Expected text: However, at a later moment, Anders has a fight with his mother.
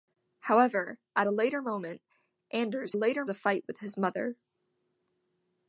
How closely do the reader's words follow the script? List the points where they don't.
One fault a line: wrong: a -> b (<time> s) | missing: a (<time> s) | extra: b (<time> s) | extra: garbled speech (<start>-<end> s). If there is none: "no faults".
wrong: has -> later (2.9 s)